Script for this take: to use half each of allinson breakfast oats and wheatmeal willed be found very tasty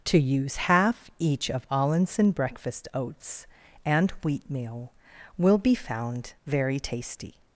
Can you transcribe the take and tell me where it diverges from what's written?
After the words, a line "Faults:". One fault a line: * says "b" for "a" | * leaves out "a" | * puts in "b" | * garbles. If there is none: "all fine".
to use half each of allinson breakfast oats and wheatmeal will be found very tasty
Faults:
* says "will" for "willed"